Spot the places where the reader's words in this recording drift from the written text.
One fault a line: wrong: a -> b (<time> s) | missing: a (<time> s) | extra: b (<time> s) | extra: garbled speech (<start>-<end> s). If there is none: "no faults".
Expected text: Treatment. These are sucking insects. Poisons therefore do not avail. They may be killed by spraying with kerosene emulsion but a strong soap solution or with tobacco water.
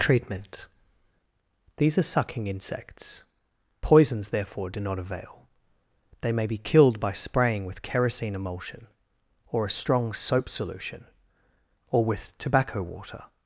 wrong: but -> or (9.5 s)